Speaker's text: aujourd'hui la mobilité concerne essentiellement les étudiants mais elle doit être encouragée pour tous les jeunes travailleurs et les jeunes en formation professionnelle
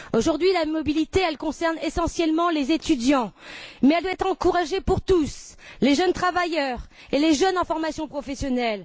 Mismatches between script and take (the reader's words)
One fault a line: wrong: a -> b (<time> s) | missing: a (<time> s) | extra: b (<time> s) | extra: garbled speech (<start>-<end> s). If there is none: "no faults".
no faults